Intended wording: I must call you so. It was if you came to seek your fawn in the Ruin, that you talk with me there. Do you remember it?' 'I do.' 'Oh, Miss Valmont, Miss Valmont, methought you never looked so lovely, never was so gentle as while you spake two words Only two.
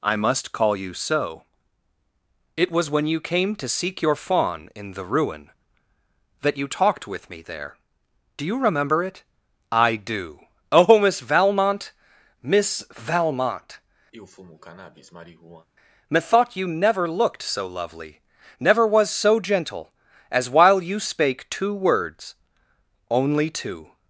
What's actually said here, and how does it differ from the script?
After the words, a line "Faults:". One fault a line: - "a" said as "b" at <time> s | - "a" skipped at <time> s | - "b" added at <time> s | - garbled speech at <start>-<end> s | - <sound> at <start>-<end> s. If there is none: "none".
I must call you so. It was when you came to seek your fawn in the Ruin, that you talked with me there. Do you remember it?' 'I do.' 'Oh, Miss Valmont, Miss Valmont, methought you never looked so lovely, never was so gentle as while you spake two words Only two.
Faults:
- "if" said as "when" at 2.9 s
- "talk" said as "talked" at 6.7 s
- sniff at 14.1-15.7 s